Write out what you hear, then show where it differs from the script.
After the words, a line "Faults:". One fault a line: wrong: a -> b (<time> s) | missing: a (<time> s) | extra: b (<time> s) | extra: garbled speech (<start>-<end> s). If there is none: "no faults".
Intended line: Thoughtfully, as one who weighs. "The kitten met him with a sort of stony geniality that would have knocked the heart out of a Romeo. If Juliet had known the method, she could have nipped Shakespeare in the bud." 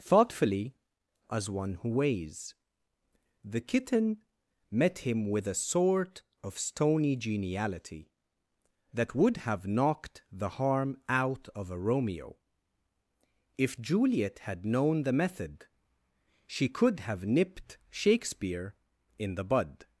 Thoughtfully, as one who weighs. "The kitten met him with a sort of stony geniality that would have knocked the harm out of a Romeo. If Juliet had known the method, she could have nipped Shakespeare in the bud."
Faults:
wrong: heart -> harm (10.5 s)